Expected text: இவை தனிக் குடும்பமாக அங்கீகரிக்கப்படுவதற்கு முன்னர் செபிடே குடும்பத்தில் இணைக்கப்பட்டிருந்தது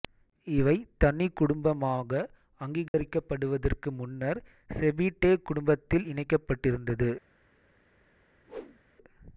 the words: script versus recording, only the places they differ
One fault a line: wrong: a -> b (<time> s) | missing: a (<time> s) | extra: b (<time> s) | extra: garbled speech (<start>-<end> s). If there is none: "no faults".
no faults